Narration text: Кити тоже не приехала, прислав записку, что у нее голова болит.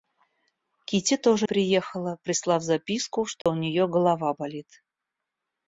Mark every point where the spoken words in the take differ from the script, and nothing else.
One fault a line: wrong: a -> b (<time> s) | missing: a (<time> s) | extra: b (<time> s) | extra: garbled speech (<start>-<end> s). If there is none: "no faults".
missing: не (1.5 s)